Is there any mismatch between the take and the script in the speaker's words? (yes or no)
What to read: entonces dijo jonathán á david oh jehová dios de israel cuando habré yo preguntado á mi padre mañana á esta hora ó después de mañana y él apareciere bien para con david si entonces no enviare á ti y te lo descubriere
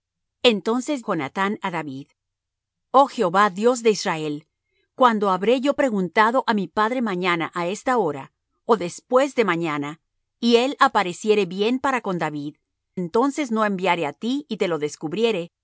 yes